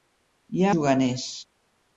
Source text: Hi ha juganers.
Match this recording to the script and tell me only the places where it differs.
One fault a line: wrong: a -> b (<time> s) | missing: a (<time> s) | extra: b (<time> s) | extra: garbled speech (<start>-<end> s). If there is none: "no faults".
no faults